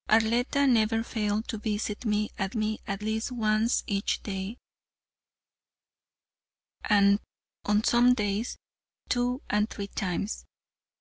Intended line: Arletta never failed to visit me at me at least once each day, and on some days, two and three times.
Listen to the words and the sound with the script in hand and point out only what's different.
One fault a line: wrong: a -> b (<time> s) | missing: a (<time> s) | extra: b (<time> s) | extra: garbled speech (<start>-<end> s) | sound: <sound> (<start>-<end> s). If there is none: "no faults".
no faults